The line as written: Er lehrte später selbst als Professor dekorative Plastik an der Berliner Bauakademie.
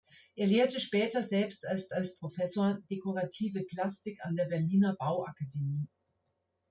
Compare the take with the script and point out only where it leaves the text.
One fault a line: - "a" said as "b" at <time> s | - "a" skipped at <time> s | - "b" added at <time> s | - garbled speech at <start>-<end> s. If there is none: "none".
- "als" added at 1.9 s